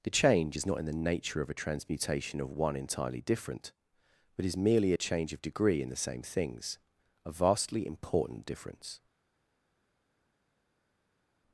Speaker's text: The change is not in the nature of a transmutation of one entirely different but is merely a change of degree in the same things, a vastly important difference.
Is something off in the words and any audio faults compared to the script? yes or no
no